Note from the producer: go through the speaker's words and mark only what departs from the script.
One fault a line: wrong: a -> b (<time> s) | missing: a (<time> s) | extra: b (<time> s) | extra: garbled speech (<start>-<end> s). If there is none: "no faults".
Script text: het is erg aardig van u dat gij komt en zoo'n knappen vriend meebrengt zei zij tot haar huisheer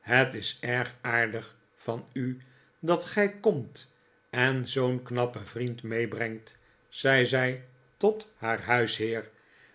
no faults